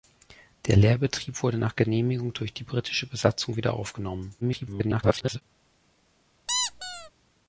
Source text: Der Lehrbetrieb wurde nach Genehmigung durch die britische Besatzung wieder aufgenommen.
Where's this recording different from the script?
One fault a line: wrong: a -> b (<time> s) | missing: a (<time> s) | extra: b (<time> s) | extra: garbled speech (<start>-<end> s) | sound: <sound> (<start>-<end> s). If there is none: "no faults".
extra: garbled speech (4.4-5.4 s)
sound: squeak (6.5-7.1 s)